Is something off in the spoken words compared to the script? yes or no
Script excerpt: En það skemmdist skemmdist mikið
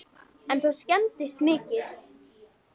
yes